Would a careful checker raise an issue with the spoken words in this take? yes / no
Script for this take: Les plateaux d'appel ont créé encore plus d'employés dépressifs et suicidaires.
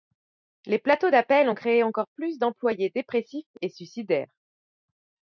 no